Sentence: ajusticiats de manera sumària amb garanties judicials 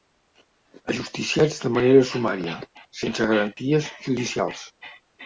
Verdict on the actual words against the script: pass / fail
fail